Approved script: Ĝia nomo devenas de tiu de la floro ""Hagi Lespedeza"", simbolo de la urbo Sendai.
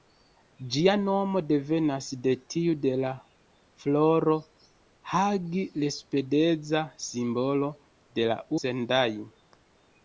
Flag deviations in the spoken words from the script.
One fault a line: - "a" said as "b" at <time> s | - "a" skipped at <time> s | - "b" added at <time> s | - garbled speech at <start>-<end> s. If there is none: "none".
- "urbo" skipped at 8.4 s